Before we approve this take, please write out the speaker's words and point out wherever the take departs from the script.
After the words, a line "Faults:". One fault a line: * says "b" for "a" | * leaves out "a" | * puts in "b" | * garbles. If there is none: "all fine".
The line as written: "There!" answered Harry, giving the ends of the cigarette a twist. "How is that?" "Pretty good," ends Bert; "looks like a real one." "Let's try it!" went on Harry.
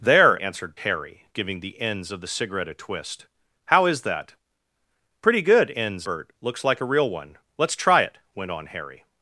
"There!" answered Harry, giving the ends of the cigarette a twist. "How is that?" "Pretty good," ends Bert; "looks like a real one." "Let's try it!" went on Harry.
Faults:
all fine